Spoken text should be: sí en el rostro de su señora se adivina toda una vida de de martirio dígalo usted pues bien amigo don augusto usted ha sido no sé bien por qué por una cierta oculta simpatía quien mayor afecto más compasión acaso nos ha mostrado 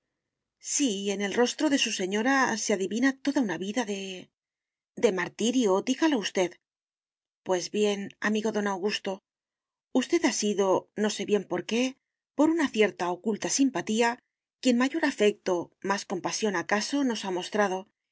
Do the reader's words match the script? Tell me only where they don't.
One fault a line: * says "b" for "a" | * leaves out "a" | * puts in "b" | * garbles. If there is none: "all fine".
all fine